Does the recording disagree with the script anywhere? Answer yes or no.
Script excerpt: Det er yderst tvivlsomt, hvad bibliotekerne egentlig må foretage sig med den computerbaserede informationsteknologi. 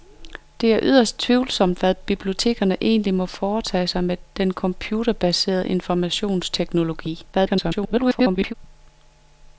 yes